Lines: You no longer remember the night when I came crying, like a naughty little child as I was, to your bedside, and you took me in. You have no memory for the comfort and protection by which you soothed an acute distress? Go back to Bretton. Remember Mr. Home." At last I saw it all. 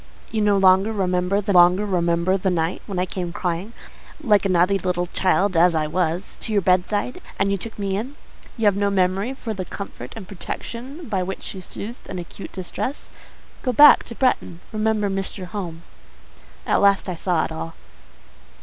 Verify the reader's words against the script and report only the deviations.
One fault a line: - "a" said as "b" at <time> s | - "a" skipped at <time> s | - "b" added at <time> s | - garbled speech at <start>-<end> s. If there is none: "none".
- "longer remember the" added at 1.5 s